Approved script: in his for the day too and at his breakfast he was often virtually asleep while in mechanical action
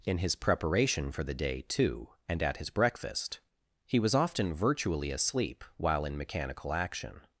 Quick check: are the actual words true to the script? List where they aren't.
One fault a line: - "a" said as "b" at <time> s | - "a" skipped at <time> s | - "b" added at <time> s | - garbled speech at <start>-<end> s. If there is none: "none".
- "preparation" added at 0.3 s